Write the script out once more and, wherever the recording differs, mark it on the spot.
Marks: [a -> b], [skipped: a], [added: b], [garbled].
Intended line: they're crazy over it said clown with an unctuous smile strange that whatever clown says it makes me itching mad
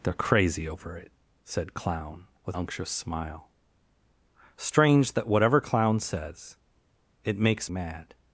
they're crazy over it said clown with [skipped: an] unctuous smile strange that whatever clown says it makes [skipped: me itching] mad